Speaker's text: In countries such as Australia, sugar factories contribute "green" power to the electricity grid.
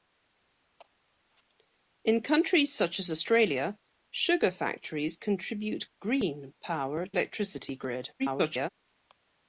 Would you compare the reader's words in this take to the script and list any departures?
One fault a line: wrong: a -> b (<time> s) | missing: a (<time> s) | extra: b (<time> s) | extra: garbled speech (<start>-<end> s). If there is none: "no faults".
missing: to the (7.0 s)
extra: garbled speech (8.2-8.7 s)